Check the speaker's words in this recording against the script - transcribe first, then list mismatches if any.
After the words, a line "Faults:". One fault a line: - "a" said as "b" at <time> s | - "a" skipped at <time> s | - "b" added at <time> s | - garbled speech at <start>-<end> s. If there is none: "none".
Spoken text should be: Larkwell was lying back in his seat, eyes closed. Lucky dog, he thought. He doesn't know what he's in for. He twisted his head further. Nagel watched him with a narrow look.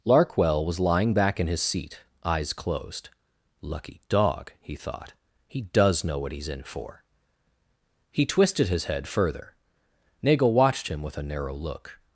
Larkwell was lying back in his seat, eyes closed. Lucky dog, he thought. He does know what he's in for. He twisted his head further. Nagel watched him with a narrow look.
Faults:
- "doesn't" said as "does" at 5.6 s